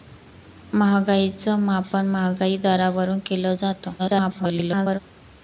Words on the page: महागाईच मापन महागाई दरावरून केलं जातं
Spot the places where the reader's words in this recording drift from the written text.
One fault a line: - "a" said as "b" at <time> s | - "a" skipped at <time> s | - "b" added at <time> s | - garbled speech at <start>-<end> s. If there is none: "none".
- garbled speech at 4.0-5.0 s